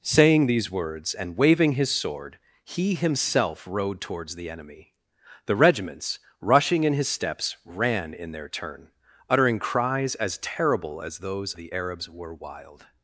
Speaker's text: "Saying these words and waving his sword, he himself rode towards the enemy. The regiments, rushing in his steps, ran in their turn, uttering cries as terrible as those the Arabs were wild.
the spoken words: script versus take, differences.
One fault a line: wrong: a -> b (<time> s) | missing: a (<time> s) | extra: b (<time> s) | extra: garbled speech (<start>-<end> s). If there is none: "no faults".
no faults